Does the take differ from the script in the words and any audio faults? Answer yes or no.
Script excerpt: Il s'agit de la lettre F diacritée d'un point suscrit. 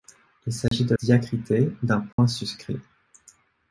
yes